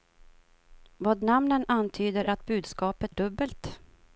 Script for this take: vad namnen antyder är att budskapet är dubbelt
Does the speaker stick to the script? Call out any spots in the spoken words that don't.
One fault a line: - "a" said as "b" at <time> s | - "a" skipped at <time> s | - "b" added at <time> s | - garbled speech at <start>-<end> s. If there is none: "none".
- "är" skipped at 2.2 s
- "är" skipped at 3.1 s